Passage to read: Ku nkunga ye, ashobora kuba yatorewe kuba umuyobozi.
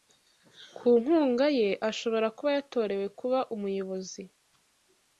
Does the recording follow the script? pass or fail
pass